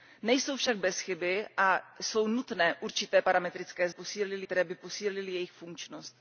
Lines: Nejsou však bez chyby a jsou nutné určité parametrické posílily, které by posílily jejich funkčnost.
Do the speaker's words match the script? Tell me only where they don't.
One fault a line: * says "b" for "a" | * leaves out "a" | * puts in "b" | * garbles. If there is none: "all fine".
all fine